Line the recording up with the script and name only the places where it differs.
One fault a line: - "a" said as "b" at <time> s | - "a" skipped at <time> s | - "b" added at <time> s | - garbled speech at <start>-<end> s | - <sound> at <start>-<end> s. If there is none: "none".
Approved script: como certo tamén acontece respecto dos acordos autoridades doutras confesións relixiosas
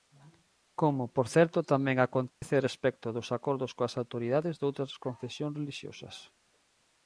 - "por" added at 1.1 s
- dropout at 2.3-2.4 s
- "coas" added at 3.8 s